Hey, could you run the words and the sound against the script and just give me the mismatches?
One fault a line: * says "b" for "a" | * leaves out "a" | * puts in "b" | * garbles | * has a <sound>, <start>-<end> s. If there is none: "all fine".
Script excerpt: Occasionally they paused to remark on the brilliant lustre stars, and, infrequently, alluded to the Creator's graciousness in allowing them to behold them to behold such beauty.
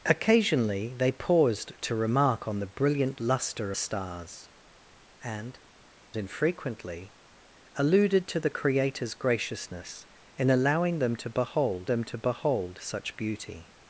all fine